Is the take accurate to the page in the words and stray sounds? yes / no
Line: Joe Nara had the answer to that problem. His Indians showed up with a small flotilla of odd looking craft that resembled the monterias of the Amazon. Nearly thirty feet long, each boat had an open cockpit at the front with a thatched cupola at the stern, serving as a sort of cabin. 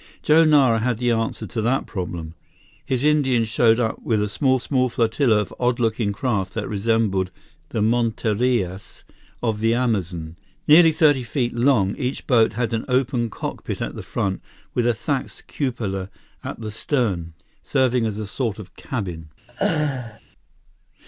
no